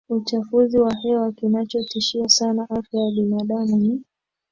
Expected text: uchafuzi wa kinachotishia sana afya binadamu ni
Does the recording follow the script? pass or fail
fail